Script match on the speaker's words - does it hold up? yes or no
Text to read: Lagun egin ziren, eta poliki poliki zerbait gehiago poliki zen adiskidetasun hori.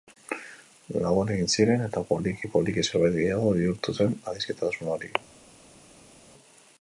no